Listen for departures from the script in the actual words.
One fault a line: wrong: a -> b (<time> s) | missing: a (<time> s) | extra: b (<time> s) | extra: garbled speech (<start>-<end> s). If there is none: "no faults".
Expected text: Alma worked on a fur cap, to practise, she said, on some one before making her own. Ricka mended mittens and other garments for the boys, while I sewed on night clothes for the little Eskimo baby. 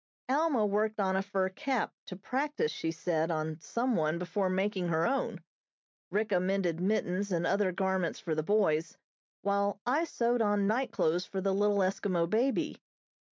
no faults